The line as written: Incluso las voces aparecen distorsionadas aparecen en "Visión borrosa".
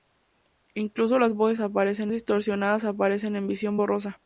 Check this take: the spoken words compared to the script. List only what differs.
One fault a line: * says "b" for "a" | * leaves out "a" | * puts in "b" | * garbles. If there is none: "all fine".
all fine